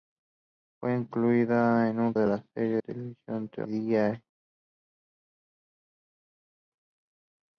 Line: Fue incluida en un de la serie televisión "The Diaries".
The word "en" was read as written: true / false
true